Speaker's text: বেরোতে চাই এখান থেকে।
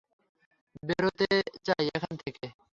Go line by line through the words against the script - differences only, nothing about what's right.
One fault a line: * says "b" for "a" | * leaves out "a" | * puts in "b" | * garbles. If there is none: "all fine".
all fine